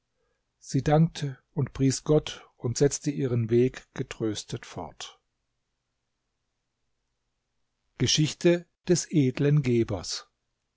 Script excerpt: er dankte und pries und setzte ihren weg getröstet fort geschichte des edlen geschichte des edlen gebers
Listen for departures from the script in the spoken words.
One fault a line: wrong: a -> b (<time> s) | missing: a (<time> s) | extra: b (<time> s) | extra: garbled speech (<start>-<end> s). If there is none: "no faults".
wrong: er -> sie (0.6 s)
extra: gott (2.0 s)
missing: geschichte des edlen (9.6 s)